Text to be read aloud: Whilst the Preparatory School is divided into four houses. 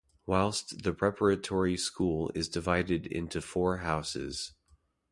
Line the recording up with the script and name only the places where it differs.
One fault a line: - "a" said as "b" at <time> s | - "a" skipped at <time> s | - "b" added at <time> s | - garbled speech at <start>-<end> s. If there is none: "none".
none